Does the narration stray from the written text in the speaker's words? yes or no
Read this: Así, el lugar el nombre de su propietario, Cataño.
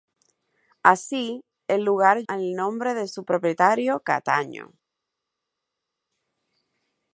no